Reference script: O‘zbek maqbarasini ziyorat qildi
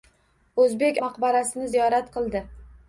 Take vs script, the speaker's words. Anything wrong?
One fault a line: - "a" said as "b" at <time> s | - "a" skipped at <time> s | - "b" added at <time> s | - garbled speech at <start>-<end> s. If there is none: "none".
none